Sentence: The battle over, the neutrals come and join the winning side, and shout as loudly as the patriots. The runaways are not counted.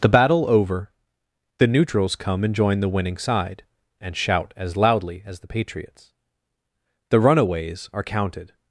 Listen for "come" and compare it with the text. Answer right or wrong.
right